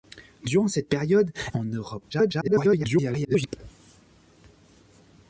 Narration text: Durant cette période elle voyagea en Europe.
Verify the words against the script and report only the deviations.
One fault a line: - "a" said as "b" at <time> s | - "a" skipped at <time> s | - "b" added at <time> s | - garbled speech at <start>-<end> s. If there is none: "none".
- "elle voyagea" skipped at 1.3 s
- garbled speech at 2.1-3.5 s